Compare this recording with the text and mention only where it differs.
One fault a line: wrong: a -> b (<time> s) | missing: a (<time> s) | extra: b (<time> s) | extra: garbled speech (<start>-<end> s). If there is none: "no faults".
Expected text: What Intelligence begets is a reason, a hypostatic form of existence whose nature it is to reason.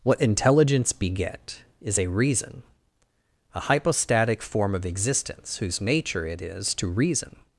wrong: begets -> beget (0.9 s)